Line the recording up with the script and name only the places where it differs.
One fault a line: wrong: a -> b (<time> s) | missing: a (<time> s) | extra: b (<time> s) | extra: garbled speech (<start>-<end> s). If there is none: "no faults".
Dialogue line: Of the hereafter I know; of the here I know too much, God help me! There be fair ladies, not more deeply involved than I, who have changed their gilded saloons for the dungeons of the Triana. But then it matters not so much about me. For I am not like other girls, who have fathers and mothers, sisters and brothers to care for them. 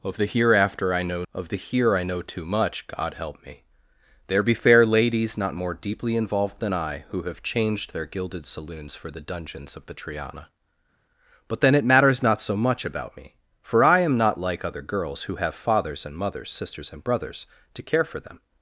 no faults